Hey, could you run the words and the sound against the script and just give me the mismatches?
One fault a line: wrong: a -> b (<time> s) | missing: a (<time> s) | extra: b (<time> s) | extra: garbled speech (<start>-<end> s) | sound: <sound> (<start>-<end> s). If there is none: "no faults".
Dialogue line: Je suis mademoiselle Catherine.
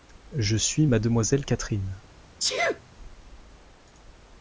sound: sneeze (2.4-2.8 s)